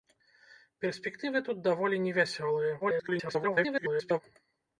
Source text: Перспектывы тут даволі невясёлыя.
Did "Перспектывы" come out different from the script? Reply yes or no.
no